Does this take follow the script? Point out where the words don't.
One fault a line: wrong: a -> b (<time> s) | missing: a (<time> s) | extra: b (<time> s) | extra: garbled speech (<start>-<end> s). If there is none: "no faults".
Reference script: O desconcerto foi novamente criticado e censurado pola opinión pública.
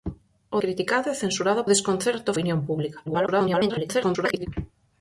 missing: desconcerto foi novamente (0.6 s)
wrong: pola -> desconcerto (1.7 s)
extra: garbled speech (3.1-4.5 s)